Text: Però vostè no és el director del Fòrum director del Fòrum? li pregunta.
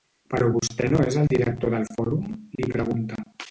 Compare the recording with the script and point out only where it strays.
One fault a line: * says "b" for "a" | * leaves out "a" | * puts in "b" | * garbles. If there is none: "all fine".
* leaves out "director del Fòrum"